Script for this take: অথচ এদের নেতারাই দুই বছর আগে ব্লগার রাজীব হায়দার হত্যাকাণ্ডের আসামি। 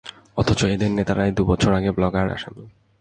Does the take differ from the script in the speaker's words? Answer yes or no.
yes